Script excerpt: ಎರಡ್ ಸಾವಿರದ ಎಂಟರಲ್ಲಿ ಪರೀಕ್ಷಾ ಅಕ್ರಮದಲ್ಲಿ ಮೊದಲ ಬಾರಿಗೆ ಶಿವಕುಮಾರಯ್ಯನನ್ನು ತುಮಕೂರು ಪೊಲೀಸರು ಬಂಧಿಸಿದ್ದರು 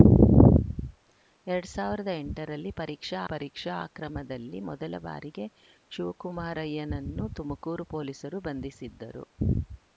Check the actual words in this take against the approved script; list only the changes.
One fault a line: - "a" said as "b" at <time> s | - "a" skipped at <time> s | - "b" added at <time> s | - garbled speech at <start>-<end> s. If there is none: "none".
- "ಪರೀಕ್ಷಾ" added at 3.2 s